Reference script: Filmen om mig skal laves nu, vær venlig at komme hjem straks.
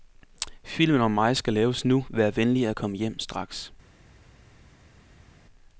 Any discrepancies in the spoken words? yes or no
no